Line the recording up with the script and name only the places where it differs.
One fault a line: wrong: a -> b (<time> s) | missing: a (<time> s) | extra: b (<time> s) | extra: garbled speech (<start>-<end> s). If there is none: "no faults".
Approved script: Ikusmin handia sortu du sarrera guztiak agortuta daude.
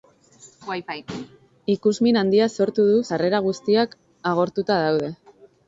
no faults